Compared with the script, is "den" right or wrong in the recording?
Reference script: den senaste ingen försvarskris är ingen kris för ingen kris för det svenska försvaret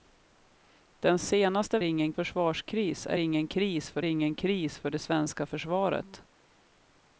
right